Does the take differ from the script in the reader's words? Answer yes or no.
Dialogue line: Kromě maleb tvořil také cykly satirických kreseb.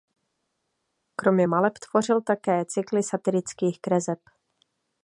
no